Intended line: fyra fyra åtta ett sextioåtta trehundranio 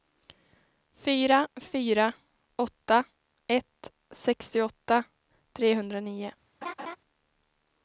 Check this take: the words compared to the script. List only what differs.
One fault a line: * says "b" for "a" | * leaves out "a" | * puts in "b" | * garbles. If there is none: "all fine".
all fine